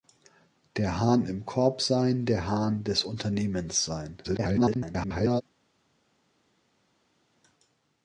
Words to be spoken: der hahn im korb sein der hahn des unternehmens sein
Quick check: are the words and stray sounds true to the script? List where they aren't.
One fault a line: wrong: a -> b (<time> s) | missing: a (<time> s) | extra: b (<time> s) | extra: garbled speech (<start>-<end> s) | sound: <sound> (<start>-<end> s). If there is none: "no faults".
extra: garbled speech (4.2-5.4 s)